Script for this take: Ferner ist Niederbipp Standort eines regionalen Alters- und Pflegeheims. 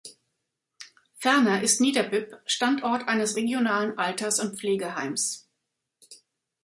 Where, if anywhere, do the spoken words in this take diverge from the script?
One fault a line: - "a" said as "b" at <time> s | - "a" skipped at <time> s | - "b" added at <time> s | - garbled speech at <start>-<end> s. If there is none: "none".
none